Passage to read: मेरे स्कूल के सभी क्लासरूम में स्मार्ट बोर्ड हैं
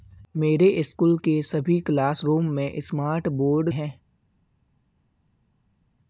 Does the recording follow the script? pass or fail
pass